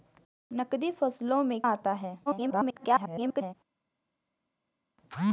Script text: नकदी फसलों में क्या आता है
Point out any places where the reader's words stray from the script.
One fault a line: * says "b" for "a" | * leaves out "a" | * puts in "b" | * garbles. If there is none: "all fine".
* leaves out "क्या"
* garbles